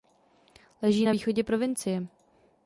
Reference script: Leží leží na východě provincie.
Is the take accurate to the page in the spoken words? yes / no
no